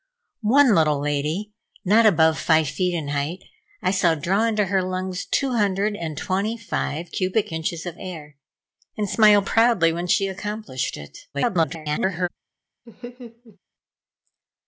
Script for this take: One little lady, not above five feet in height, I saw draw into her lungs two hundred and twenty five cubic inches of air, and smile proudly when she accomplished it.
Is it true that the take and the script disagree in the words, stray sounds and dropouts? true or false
true